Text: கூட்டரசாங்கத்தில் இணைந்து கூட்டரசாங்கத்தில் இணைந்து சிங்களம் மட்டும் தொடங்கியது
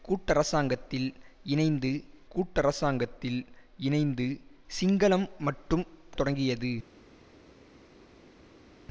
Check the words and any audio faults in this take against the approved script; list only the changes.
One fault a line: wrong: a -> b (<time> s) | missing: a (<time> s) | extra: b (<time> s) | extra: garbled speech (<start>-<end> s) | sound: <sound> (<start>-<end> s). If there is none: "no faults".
no faults